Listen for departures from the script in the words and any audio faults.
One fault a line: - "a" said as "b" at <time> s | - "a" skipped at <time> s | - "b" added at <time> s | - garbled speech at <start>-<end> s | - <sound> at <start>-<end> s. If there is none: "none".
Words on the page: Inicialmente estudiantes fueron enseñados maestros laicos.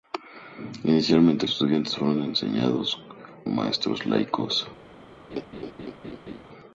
- laugh at 5.3-6.4 s